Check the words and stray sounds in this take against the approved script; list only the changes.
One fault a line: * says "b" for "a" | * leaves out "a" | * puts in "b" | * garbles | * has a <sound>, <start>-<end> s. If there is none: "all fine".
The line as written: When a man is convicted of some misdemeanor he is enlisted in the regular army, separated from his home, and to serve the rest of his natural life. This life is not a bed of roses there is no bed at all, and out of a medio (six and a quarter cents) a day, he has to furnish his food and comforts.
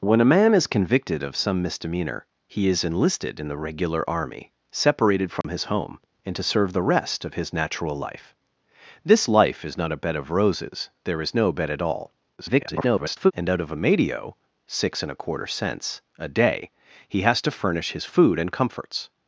* has a dropout, 5.4-5.4 s
* garbles